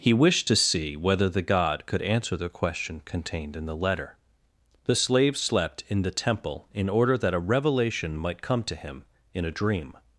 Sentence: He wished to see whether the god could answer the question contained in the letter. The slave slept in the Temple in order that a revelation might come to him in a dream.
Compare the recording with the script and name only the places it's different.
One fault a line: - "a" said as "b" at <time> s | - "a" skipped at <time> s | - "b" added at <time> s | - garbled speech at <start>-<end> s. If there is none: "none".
none